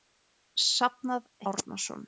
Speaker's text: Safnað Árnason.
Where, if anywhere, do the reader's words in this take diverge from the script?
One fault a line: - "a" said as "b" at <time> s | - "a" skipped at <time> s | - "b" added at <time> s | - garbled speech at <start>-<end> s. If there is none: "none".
none